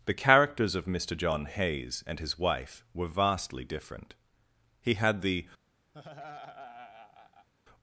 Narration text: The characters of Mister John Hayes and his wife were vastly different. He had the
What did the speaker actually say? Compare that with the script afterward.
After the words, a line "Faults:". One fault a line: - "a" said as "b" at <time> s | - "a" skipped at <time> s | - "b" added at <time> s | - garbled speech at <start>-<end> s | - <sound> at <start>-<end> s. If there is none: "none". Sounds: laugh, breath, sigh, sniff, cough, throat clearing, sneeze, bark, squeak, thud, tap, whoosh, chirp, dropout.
The characters of Mister John Hayes and his wife were vastly different. He had the
Faults:
- laugh at 5.9-7.5 s